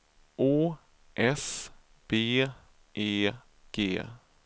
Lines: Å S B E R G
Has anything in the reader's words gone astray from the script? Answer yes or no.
yes